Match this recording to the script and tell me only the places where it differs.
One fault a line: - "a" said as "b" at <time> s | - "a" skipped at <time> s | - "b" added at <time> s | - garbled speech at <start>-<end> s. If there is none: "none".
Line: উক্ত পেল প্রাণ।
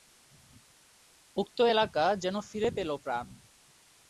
- "এলাকা যেন ফিরে" added at 1.7 s